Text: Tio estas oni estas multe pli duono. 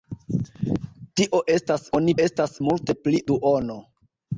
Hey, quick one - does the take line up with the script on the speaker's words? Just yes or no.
yes